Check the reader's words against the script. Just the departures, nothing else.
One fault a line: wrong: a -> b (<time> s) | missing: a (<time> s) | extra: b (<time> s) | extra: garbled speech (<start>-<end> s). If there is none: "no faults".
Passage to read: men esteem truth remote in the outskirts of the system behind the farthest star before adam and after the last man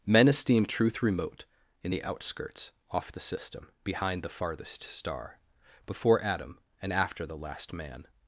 wrong: of -> off (2.9 s)